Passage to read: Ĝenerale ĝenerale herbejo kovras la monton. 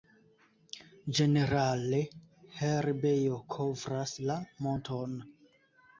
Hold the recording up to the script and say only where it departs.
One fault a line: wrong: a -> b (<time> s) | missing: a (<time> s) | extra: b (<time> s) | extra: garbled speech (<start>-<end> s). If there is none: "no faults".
missing: ĝenerale (2.0 s)